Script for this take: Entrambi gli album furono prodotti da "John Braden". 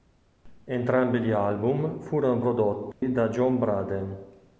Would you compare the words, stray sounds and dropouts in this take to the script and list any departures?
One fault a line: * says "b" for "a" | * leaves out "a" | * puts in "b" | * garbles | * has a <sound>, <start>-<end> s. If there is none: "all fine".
* has a dropout, 2.9-3.0 s